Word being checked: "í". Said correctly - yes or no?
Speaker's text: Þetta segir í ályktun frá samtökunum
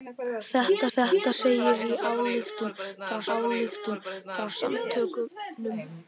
yes